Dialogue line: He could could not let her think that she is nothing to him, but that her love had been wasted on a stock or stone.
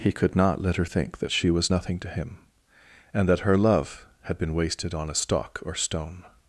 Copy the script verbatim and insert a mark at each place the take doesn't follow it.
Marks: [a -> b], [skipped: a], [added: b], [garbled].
He could [skipped: could] not let her think that she [is -> was] nothing to him, [but -> and] that her love had been wasted on a stock or stone.